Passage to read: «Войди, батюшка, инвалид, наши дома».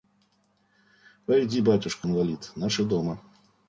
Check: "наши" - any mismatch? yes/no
no